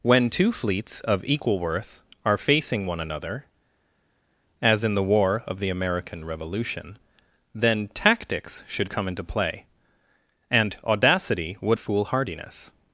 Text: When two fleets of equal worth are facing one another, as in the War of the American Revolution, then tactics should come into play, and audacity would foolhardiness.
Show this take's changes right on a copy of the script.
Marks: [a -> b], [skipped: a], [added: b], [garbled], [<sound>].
When two fleets of equal worth are facing one another, as in the War of the American Revolution, then tactics should come into play, and audacity would foolhardiness.